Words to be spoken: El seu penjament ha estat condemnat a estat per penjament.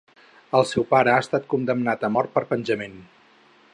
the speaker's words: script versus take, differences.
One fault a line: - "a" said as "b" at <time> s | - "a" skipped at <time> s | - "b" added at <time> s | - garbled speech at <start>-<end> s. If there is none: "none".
- "penjament" said as "pare" at 0.9 s
- "estat" said as "mort" at 2.2 s